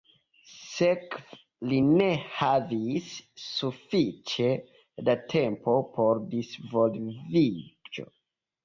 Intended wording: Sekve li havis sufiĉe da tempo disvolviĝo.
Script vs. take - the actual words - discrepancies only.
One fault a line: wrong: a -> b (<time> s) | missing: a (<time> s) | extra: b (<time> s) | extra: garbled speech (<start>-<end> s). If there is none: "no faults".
extra: ne (1.9 s)
extra: por (6.0 s)